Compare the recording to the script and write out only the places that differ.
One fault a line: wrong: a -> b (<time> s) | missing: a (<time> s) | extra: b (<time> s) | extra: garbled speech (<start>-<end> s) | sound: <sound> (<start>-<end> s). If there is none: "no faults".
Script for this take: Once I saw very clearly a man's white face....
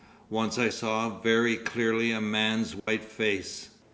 sound: dropout (2.8-2.9 s)